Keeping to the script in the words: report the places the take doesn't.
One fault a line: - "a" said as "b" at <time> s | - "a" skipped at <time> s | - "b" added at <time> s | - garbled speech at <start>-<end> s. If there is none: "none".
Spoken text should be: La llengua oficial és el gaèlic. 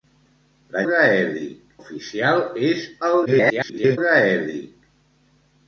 - "llengua" said as "gaèlic" at 0.9 s
- garbled speech at 3.2-4.0 s